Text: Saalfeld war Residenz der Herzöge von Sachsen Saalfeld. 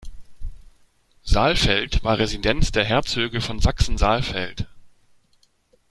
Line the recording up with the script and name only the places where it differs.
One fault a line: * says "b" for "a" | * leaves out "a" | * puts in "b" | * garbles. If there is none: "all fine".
all fine